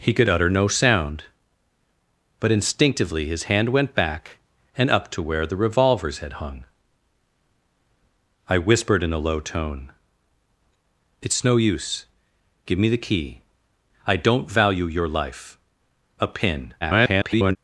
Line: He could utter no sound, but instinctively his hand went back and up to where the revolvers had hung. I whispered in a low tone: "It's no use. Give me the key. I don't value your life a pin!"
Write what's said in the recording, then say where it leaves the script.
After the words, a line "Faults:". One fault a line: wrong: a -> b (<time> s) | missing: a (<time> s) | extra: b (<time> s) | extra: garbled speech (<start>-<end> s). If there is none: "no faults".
He could utter no sound, but instinctively his hand went back and up to where the revolvers had hung. I whispered in a low tone: "It's no use. Give me the key. I don't value your life a pin!" [garbled]
Faults:
extra: garbled speech (16.8-17.6 s)